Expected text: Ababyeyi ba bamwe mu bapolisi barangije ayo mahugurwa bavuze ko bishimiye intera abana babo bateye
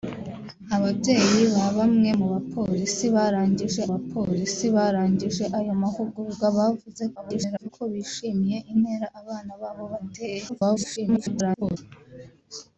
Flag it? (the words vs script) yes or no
yes